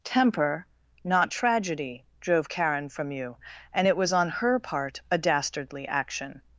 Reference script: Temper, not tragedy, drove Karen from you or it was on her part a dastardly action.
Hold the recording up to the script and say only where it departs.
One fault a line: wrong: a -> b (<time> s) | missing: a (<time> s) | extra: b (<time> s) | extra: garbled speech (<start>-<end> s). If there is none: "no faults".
wrong: or -> and (3.7 s)